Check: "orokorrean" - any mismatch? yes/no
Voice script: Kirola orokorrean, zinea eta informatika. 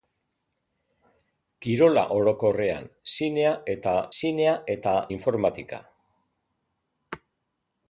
no